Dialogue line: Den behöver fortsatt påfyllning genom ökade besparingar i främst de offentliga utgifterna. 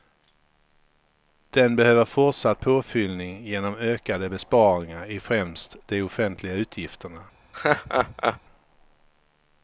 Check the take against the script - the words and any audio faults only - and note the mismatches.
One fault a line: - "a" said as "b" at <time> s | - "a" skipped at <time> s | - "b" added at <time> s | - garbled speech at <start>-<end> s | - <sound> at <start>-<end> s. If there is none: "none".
- laugh at 7.5-8.4 s